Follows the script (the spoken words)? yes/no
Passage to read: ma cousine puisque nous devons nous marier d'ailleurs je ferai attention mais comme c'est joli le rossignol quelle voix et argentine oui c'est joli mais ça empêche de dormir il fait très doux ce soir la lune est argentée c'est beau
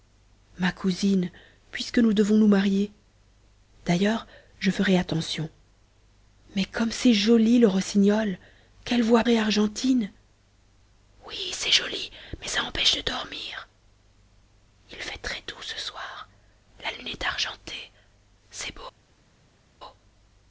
yes